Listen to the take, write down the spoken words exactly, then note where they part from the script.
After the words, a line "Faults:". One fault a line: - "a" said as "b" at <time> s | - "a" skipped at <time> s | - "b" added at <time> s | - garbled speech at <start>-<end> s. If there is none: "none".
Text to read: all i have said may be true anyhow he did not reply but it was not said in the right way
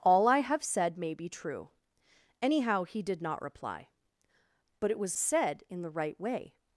all i have said may be true anyhow he did not reply but it was said in the right way
Faults:
- "not" skipped at 5.2 s